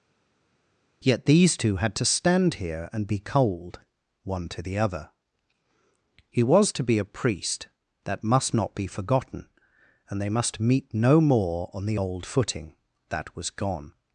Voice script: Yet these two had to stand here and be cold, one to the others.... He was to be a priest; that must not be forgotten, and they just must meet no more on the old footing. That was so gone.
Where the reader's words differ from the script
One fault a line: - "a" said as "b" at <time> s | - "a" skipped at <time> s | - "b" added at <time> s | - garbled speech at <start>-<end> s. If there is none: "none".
- "others" said as "other" at 4.8 s
- "just" skipped at 10.3 s
- "so" skipped at 13.5 s